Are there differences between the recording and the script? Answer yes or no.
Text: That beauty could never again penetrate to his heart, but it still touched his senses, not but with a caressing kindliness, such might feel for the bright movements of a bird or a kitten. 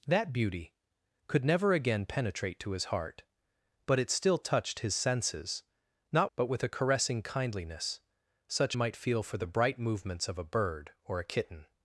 no